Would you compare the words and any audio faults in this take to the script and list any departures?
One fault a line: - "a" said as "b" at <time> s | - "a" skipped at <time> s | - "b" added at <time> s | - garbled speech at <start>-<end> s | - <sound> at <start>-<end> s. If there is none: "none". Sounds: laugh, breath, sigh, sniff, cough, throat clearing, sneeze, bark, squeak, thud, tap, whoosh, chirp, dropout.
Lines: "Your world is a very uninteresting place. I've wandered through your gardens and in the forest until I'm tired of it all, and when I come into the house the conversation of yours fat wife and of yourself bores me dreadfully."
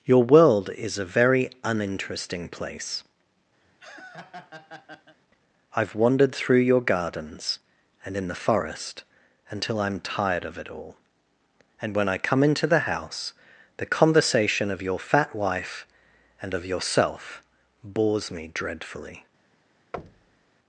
- laugh at 3.6-5.2 s
- "yours" said as "your" at 14.8 s
- thud at 19.9-20.5 s